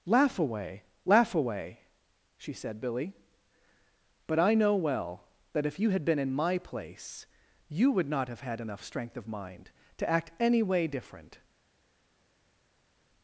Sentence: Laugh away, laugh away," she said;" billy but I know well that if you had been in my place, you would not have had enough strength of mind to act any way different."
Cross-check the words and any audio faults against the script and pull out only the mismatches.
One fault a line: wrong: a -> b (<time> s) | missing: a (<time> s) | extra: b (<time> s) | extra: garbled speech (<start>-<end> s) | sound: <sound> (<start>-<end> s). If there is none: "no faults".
no faults